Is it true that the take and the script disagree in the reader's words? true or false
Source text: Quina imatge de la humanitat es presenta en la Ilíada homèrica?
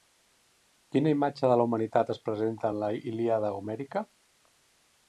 false